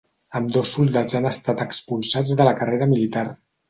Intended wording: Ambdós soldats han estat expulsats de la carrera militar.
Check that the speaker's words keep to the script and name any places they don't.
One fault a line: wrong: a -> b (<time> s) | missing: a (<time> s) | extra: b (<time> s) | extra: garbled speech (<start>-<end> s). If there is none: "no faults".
no faults